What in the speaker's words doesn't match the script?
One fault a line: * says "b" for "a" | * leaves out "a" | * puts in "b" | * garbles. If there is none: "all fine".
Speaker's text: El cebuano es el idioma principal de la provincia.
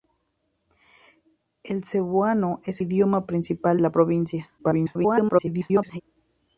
* leaves out "el"
* leaves out "de"
* garbles